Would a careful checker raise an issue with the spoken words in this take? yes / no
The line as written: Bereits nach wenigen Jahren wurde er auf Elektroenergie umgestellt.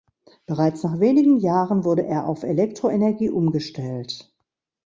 no